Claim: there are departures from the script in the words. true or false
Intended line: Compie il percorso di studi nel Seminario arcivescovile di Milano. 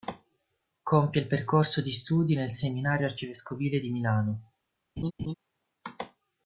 false